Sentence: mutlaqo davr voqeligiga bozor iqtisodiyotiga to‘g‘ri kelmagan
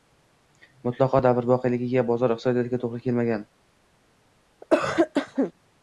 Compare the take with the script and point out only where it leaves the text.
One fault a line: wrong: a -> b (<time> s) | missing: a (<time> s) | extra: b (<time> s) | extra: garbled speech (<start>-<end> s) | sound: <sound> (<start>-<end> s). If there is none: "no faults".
sound: cough (4.6-5.5 s)